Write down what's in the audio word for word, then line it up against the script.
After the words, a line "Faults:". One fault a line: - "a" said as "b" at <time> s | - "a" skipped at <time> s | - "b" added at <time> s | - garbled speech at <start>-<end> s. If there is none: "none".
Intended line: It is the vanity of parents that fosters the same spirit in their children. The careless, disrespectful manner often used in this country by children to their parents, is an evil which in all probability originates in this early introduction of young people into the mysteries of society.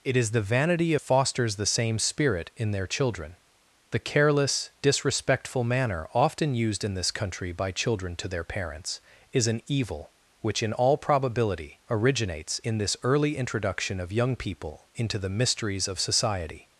It is the vanity fosters the same spirit in their children. The careless, disrespectful manner often used in this country by children to their parents, is an evil which in all probability originates in this early introduction of young people into the mysteries of society.
Faults:
- "of parents that" skipped at 0.9 s